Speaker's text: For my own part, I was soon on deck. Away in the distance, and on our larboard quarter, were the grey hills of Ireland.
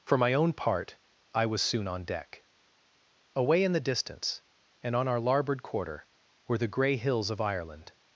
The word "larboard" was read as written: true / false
true